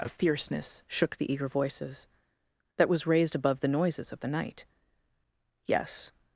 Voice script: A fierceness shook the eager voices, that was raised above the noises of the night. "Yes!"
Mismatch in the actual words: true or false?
false